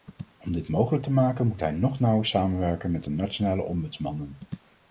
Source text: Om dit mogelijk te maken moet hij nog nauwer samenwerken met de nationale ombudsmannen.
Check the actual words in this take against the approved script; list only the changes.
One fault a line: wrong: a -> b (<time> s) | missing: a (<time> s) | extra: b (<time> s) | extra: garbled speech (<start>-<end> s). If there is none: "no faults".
no faults